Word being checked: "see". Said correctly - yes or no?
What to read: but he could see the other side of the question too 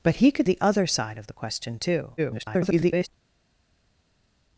no